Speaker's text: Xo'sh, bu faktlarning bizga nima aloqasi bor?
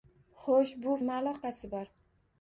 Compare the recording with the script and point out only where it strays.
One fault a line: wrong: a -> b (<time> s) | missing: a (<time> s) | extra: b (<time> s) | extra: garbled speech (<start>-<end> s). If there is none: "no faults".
missing: faktlarning bizga (0.9 s)